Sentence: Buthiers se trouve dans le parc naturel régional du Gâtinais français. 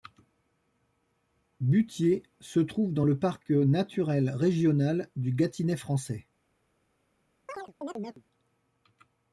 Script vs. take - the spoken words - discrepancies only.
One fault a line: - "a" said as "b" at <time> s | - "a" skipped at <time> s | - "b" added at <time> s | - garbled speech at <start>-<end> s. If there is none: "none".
none